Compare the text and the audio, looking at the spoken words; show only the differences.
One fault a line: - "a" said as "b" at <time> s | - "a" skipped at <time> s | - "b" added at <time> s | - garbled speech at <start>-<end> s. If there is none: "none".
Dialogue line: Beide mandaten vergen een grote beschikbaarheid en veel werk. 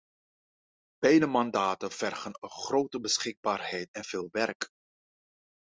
none